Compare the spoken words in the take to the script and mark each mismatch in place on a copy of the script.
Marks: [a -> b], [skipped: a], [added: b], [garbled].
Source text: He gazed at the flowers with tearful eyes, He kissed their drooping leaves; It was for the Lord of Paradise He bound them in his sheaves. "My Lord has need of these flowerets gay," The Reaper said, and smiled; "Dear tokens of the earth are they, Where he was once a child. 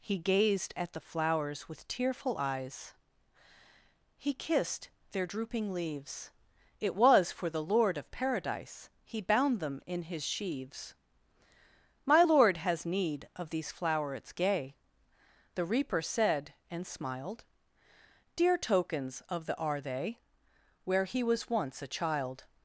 He gazed at the flowers with tearful eyes, He kissed their drooping leaves; It was for the Lord of Paradise He bound them in his sheaves. "My Lord has need of these flowerets gay," The Reaper said, and smiled; "Dear tokens of the [skipped: earth] are they, Where he was once a child.